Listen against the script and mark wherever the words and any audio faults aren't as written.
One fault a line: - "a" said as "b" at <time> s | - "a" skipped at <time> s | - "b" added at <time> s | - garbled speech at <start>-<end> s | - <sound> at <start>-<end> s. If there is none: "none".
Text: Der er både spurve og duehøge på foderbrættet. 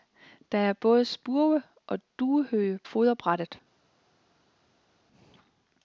- "på" skipped at 2.8 s